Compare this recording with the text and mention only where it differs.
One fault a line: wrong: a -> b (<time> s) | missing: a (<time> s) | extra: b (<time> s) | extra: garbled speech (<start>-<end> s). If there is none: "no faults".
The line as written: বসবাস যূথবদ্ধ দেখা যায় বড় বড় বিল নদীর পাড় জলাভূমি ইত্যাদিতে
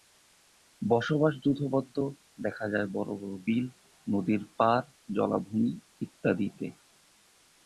no faults